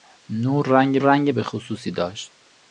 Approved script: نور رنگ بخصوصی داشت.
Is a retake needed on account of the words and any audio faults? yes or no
yes